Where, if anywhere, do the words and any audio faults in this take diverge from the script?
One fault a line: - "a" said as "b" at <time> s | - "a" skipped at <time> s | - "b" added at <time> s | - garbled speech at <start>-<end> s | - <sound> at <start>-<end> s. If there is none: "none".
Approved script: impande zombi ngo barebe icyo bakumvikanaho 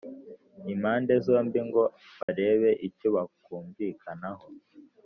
- dropout at 2.2-2.3 s